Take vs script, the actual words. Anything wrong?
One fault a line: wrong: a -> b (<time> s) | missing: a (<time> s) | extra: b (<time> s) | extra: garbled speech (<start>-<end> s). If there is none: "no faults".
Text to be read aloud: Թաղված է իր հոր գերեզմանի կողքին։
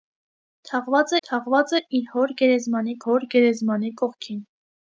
extra: թաղված (1.3 s)
extra: հոր գերեզմանի (3.1 s)